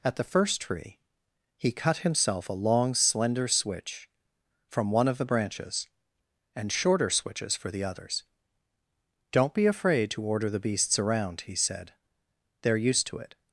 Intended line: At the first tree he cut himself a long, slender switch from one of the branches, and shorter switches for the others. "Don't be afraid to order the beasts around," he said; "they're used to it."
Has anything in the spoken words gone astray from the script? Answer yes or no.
no